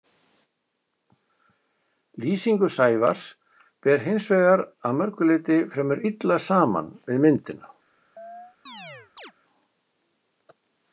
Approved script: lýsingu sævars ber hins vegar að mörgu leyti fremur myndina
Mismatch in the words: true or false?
true